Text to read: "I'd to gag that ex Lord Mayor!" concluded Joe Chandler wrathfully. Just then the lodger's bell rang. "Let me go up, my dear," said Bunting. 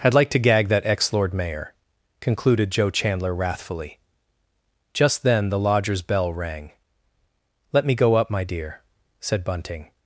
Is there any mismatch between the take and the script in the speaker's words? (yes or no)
yes